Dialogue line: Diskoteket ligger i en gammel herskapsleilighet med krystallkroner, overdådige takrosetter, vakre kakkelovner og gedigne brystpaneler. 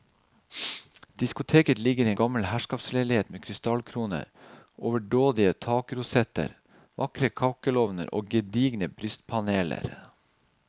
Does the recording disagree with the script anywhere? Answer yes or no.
yes